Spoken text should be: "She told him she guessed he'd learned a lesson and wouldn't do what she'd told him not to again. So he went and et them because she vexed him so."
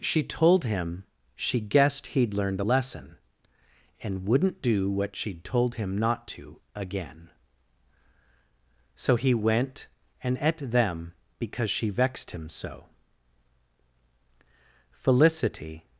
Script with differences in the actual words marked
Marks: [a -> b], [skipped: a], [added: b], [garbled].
"She told him she guessed he'd learned a lesson and wouldn't do what she'd told him not to again. So he went and et them because she vexed him so." [added: Felicity]